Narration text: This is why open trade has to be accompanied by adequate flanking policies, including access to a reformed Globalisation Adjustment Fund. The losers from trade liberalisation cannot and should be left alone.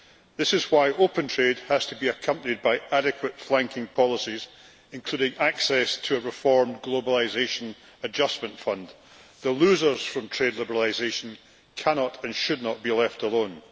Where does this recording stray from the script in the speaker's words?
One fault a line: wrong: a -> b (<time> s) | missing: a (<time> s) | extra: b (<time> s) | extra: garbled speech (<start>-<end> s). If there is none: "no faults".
extra: not (12.6 s)